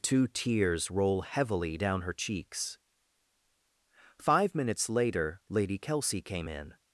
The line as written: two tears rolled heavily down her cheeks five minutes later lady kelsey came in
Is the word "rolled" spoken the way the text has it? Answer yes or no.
no